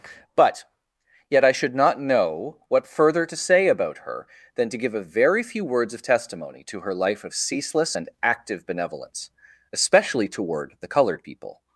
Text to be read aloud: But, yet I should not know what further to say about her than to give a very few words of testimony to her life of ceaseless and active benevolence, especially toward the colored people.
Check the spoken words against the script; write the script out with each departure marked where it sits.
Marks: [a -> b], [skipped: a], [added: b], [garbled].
But, yet I should not know what further to say about her than to give a very few words of testimony to her life of ceaseless and active benevolence, especially toward the colored people.